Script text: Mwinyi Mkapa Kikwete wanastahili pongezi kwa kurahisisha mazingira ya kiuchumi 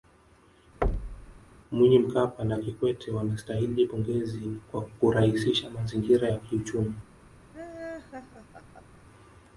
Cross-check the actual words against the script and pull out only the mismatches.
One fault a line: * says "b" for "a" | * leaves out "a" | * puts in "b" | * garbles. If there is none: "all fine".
* puts in "na"